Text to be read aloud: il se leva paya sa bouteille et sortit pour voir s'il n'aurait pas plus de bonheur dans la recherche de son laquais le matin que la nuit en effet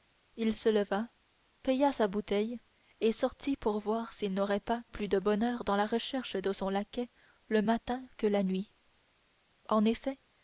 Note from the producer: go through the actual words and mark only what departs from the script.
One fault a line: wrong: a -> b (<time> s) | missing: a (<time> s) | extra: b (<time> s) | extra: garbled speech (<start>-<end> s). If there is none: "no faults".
no faults